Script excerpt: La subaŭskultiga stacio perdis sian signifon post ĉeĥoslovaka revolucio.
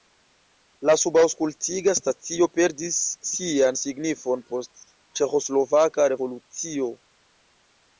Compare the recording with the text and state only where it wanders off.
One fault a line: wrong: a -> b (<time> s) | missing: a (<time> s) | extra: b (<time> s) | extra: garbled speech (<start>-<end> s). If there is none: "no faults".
no faults